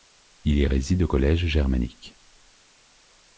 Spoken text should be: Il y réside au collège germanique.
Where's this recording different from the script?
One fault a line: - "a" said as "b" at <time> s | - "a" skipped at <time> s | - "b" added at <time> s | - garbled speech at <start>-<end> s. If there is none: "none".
none